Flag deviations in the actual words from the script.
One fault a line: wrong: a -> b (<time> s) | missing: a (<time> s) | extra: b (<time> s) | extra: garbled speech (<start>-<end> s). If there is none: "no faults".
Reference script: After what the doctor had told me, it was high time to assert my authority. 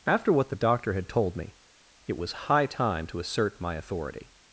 no faults